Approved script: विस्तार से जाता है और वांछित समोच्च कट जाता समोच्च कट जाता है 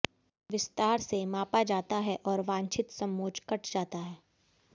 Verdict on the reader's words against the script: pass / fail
fail